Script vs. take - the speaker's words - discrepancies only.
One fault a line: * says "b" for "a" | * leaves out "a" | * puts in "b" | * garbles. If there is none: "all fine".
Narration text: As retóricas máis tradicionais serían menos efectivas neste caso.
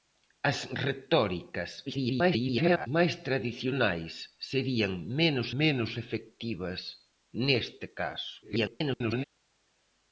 * garbles
* puts in "menos"
* garbles